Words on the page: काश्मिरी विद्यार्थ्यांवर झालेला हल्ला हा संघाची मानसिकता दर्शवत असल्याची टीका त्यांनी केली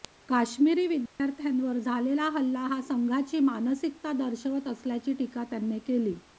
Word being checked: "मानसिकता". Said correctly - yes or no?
yes